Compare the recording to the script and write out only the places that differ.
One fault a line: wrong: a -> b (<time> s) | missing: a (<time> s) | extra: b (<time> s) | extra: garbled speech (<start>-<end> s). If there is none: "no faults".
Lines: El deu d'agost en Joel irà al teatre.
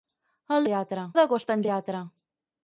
wrong: deu -> teatre (0.7 s)
missing: Joel irà al (1.7 s)